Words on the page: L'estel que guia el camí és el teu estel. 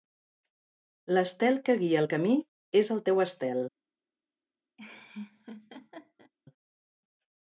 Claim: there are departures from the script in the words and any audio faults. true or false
true